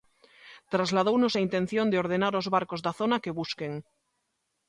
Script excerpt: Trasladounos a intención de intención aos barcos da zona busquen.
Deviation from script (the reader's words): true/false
true